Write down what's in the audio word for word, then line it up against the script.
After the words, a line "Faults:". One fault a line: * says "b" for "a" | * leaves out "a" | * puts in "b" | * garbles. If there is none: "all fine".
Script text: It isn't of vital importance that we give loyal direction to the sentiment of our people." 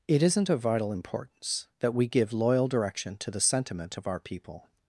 It isn't of vital importance that we give loyal direction to the sentiment of our people."
Faults:
all fine